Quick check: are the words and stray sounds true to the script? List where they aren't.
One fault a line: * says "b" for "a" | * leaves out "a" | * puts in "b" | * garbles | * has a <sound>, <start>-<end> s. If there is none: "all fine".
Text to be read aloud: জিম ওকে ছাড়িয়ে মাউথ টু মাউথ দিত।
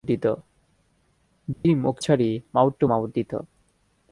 * has a dropout, 1.5-1.6 s